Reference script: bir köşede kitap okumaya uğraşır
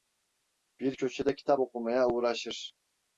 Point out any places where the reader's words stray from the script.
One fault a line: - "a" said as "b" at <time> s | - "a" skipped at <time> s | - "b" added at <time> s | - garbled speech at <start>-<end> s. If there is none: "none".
none